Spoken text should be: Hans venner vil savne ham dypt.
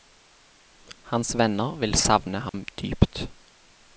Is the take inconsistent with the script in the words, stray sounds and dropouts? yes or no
yes